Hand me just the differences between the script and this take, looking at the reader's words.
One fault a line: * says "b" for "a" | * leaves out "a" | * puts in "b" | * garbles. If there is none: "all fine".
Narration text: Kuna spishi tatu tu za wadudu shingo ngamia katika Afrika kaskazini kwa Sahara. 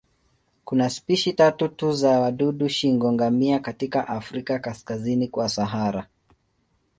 all fine